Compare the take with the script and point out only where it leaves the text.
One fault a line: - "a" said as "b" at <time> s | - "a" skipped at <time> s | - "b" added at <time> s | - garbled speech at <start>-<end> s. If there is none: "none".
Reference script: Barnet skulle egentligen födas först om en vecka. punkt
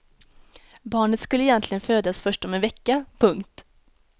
none